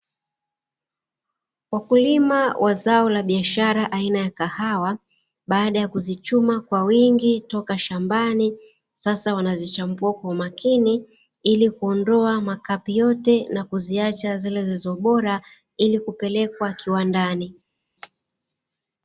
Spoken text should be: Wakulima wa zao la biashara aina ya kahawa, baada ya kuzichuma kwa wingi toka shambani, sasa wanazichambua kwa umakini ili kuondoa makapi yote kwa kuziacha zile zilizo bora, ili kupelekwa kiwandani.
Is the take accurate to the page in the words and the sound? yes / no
no